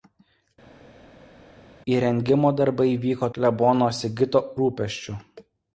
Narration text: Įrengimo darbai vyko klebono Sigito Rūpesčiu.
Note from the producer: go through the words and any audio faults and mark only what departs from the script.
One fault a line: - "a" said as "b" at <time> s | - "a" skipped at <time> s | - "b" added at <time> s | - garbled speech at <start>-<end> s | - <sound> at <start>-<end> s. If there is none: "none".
none